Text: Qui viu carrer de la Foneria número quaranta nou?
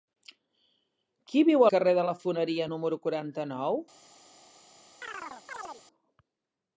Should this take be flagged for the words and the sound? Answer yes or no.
yes